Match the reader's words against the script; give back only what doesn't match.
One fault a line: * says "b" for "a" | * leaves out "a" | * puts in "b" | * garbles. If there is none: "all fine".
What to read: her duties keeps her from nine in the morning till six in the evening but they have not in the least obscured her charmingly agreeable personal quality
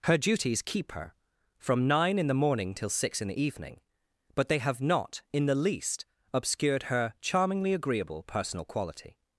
* says "keep" for "keeps"